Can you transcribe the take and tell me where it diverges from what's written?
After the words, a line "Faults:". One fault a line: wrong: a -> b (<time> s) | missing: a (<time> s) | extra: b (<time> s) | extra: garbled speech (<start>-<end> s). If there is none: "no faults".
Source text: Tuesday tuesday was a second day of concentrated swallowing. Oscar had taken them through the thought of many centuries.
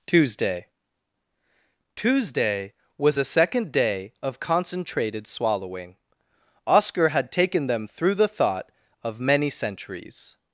Tuesday tuesday was a second day of concentrated swallowing. Oscar had taken them through the thought of many centuries.
Faults:
no faults